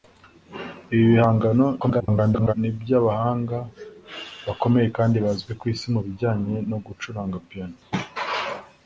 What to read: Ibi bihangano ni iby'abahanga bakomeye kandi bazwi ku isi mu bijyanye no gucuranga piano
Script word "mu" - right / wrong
right